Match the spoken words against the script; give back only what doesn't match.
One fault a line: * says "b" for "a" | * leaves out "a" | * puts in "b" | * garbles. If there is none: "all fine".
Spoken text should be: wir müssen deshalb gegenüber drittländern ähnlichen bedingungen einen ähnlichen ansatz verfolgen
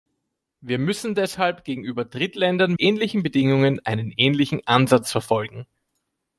all fine